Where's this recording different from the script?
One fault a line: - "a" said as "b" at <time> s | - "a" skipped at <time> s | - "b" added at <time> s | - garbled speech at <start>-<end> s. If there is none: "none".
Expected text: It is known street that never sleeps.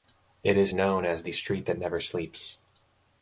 - "as the" added at 1.1 s